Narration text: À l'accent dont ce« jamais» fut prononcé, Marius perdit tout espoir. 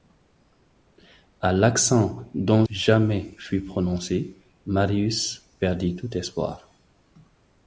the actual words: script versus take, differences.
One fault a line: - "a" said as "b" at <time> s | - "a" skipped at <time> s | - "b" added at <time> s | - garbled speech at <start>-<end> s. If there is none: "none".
- "ce" skipped at 2.6 s